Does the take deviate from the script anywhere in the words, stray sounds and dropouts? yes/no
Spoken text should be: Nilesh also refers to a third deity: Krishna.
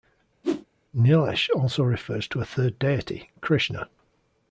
yes